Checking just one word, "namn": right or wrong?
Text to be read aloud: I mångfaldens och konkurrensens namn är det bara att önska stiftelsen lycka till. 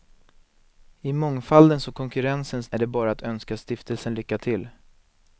wrong